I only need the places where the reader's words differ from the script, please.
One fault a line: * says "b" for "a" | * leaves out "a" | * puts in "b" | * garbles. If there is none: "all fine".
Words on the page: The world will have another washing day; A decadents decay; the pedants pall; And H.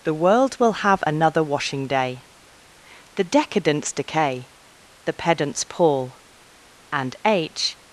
* says "The" for "A"